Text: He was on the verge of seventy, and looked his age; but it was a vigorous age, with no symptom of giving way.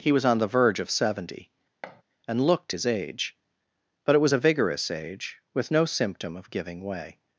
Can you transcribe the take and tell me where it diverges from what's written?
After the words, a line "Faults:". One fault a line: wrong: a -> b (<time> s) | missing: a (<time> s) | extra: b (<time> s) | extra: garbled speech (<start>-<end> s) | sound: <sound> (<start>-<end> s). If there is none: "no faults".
He was on the verge of seventy, and looked his age; but it was a vigorous age, with no symptom of giving way.
Faults:
sound: thud (1.8-2.0 s)